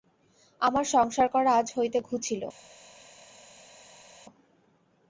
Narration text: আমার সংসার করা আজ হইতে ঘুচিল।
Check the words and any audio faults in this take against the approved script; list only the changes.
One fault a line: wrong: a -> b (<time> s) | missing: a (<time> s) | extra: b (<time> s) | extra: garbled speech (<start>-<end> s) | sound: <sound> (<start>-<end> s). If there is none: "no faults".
no faults